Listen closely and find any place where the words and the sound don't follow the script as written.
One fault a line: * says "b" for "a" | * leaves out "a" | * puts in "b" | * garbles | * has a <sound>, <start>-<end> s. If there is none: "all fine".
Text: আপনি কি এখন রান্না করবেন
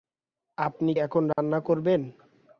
* leaves out "কি"
* has a dropout, 1.3-1.4 s